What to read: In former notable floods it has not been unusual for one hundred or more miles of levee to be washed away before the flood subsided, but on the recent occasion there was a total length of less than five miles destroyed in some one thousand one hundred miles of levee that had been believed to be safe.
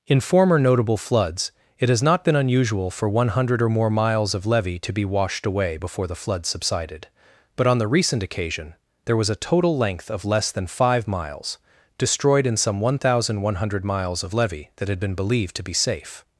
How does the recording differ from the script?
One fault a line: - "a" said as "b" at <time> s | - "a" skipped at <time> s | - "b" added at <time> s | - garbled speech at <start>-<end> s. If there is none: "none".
none